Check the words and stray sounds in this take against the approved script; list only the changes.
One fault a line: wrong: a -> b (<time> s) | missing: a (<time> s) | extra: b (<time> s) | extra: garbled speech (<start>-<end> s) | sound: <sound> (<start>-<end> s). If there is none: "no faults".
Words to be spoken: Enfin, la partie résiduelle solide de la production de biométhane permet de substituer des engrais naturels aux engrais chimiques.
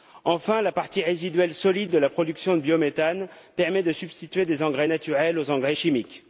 no faults